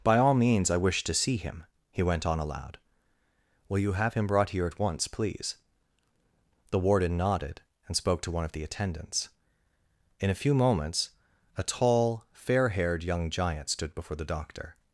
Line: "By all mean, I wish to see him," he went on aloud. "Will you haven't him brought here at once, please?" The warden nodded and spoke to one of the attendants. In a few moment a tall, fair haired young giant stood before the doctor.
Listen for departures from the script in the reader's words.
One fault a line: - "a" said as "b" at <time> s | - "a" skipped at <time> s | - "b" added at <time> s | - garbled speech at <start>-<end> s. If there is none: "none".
- "mean" said as "means" at 0.3 s
- "haven't" said as "have" at 3.9 s
- "moment" said as "moments" at 10.5 s